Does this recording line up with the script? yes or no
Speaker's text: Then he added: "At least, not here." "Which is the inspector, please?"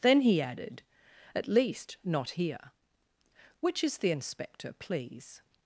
yes